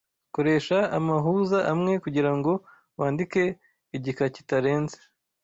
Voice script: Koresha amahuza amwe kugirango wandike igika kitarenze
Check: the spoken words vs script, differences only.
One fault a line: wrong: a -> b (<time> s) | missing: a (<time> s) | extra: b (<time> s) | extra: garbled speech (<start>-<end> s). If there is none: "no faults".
no faults